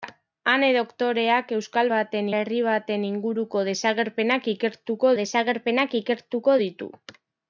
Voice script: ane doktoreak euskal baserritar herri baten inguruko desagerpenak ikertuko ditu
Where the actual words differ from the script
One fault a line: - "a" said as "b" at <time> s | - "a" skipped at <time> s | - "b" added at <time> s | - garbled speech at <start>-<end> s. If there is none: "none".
- "baserritar" said as "baten" at 1.9 s
- "desagerpenak ikertuko" added at 5.2 s